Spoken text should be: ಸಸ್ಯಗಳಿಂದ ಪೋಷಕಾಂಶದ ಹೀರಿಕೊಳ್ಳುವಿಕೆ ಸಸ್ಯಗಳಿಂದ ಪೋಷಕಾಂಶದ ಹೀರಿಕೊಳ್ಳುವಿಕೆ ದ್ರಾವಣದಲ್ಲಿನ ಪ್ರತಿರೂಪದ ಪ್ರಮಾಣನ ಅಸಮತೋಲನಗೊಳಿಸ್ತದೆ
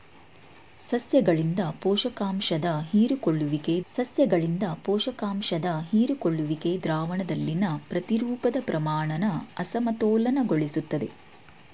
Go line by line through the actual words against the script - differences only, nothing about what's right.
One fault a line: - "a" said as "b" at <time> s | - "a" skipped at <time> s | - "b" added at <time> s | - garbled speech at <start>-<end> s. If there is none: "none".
none